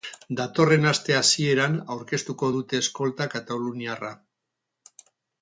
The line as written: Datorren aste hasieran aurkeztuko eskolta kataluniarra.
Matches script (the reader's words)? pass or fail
fail